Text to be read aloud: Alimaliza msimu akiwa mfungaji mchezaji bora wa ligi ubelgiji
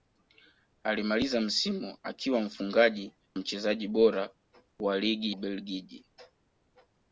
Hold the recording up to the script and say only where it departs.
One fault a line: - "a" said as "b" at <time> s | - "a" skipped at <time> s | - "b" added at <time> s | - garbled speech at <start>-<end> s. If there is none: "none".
none